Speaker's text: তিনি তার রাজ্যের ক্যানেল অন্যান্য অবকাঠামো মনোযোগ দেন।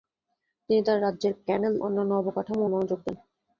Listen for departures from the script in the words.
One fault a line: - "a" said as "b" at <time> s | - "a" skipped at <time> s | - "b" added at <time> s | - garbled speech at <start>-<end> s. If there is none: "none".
none